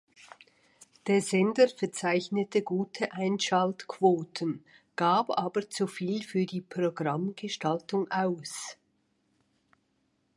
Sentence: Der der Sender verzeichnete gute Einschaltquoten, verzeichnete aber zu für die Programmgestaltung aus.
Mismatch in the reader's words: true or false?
true